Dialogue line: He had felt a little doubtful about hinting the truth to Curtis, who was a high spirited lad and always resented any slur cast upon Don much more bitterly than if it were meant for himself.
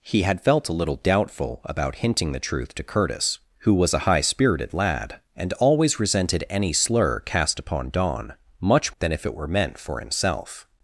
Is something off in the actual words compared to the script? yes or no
yes